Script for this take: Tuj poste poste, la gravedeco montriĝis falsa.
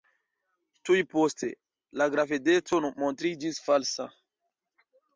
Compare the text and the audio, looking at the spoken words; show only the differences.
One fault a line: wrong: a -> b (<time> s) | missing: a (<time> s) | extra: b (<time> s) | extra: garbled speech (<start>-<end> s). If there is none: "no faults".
missing: poste (1.5 s)